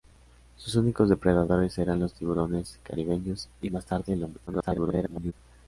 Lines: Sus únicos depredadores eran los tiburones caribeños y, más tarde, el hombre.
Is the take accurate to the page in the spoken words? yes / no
no